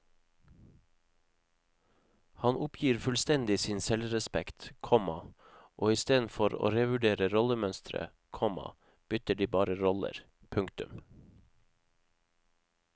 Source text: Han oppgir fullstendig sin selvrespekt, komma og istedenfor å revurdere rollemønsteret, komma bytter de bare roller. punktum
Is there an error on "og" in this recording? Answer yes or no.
no